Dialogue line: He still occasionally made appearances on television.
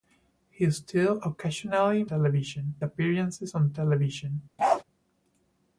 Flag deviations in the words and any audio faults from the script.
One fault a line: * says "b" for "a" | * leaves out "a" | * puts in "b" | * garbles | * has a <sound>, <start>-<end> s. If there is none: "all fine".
* says "television" for "made"
* has a bark, 4.6-4.8 s